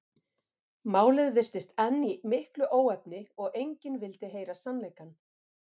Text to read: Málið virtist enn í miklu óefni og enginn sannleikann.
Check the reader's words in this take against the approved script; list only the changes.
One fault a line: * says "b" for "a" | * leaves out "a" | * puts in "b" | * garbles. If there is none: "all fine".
* puts in "vildi heyra"